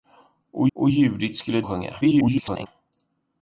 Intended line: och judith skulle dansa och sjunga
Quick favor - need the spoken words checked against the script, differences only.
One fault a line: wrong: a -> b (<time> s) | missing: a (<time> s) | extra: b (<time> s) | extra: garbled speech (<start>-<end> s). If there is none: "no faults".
extra: och (0.7 s)
missing: dansa (1.6 s)
extra: garbled speech (2.0-2.7 s)